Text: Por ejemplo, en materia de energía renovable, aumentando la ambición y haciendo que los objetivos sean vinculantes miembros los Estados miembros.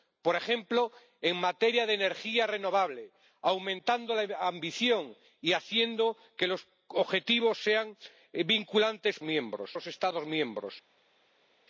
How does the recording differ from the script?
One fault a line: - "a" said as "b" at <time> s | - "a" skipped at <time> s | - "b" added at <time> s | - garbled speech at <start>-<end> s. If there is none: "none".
none